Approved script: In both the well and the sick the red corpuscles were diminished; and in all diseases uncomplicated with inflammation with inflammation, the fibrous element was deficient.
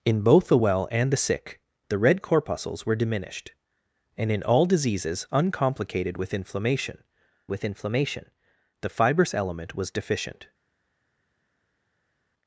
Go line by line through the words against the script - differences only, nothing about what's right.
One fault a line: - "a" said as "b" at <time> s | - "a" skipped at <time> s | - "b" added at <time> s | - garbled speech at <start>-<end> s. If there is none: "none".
none